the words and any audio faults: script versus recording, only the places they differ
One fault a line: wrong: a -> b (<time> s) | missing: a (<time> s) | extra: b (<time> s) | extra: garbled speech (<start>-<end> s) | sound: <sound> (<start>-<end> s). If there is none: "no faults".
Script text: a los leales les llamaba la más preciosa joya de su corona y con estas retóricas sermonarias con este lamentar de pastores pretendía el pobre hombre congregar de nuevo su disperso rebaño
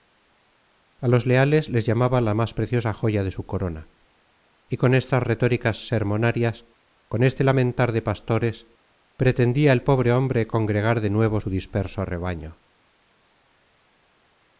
no faults